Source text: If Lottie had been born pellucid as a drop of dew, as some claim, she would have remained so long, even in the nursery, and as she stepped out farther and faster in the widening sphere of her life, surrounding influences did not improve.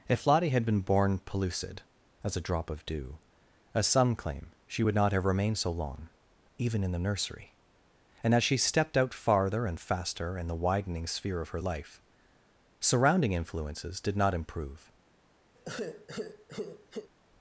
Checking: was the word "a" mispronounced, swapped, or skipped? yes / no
no